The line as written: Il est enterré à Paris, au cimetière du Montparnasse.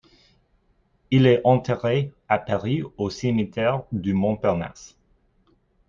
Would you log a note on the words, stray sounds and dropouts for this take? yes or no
no